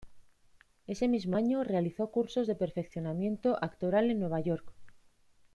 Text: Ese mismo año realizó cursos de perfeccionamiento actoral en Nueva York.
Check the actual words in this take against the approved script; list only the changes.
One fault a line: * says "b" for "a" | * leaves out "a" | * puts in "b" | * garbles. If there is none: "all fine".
all fine